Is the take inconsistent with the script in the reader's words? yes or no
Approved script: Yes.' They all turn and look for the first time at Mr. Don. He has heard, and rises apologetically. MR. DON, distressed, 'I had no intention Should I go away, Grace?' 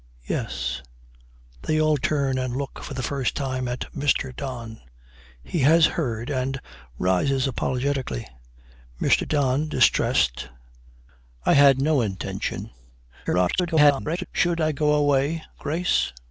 yes